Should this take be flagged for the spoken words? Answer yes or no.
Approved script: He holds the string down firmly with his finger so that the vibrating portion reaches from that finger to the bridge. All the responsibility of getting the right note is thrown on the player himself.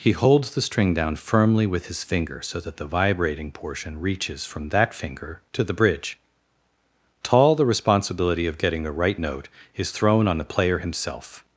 yes